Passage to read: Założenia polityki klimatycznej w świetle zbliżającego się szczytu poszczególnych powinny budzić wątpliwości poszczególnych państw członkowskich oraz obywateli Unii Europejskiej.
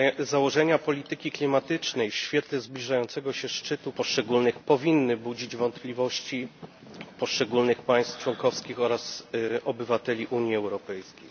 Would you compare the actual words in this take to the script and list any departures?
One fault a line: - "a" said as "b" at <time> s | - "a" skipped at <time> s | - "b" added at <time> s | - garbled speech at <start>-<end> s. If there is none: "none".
none